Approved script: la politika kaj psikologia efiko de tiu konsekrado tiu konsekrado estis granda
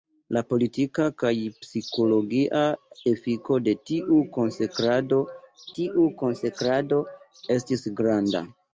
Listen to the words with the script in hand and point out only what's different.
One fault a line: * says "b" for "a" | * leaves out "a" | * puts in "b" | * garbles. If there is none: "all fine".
all fine